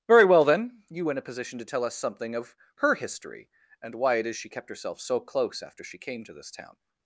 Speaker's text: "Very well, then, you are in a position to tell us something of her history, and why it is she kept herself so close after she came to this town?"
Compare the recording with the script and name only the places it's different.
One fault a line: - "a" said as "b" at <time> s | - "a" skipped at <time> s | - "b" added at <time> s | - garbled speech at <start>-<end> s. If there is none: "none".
- "are" skipped at 1.1 s